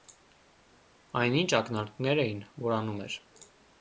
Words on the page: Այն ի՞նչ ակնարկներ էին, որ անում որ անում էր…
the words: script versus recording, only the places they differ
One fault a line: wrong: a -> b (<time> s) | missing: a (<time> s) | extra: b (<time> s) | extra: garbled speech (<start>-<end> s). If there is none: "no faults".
missing: որ անում (3.0 s)